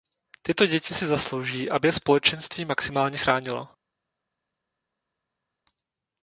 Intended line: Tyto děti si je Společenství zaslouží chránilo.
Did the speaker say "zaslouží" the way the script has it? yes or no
no